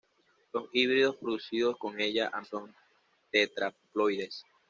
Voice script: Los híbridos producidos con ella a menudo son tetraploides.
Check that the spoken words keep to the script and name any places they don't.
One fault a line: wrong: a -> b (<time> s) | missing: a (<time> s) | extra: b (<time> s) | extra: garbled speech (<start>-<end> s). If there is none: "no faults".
missing: menudo (2.4 s)